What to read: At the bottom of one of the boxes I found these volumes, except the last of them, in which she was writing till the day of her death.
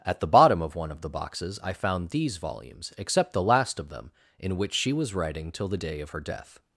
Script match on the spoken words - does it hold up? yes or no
yes